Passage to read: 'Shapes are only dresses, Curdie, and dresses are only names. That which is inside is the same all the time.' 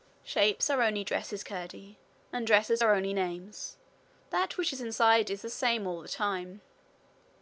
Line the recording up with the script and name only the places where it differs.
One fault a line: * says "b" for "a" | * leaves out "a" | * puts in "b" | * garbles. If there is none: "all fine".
all fine